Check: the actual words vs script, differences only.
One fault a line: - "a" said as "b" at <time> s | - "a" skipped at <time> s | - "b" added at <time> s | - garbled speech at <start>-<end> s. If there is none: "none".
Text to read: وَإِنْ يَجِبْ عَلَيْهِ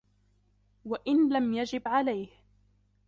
- "لَمْ" added at 1.3 s